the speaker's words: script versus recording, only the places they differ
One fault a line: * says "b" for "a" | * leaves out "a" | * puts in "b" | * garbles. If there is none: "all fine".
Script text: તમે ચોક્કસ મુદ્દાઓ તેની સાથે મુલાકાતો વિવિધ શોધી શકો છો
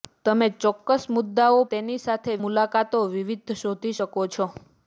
all fine